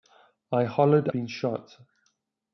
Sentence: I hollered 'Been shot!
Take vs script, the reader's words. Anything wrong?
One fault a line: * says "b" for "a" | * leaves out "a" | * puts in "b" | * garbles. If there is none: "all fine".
all fine